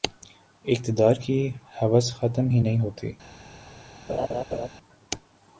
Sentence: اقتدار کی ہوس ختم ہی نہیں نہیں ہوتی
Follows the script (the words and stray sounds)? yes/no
no